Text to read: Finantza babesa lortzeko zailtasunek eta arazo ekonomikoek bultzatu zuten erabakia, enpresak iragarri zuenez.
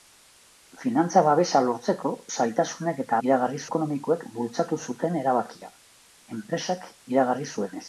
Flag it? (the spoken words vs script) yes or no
yes